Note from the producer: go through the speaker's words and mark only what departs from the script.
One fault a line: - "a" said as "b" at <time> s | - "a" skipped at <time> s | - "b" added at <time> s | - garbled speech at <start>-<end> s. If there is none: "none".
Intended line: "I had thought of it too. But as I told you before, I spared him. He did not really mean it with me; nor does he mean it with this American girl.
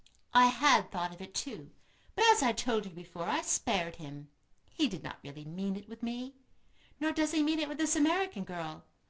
none